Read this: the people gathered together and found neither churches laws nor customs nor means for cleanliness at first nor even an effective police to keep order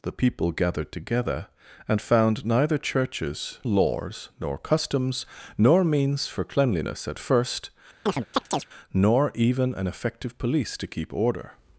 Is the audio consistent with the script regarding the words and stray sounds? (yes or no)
no